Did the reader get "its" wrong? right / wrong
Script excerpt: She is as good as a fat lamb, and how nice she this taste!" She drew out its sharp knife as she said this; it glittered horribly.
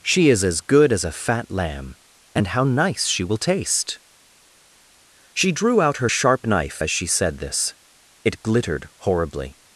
wrong